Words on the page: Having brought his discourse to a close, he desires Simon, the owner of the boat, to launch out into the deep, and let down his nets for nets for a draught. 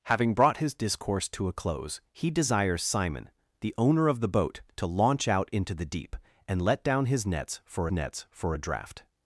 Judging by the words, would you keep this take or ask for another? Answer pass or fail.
pass